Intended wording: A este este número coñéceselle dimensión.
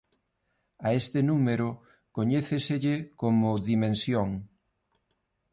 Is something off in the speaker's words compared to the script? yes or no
yes